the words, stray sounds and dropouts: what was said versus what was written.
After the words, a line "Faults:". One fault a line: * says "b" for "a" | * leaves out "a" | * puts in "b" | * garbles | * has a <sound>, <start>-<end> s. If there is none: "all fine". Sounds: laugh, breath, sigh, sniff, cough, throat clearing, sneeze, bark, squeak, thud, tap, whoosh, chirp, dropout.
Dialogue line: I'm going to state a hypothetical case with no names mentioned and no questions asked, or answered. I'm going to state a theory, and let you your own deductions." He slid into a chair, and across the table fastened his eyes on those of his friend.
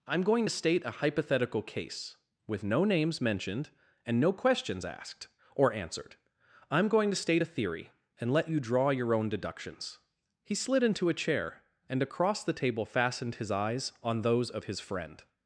I'm going to state a hypothetical case with no names mentioned and no questions asked, or answered. I'm going to state a theory, and let you draw your own deductions." He slid into a chair, and across the table fastened his eyes on those of his friend.
Faults:
* puts in "draw"